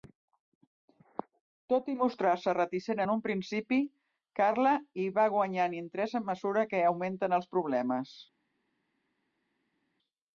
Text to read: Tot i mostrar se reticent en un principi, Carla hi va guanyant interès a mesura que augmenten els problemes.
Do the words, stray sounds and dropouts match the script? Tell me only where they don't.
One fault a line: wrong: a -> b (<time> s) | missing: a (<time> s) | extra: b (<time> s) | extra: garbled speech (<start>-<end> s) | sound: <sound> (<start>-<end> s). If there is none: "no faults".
no faults